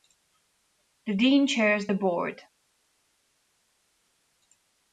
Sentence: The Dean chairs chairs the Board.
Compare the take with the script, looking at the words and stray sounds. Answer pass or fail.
fail